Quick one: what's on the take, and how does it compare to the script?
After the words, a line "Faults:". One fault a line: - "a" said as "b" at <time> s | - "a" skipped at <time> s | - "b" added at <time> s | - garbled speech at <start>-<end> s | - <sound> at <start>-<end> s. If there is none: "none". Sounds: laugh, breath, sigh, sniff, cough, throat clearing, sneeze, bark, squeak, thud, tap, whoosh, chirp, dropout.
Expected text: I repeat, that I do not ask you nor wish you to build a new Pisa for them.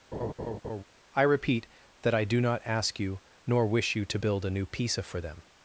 I repeat, that I do not ask you nor wish you to build a new Pisa for them.
Faults:
- laugh at 0.1-0.8 s